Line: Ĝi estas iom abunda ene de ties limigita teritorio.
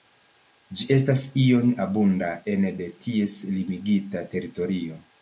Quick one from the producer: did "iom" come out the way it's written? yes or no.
yes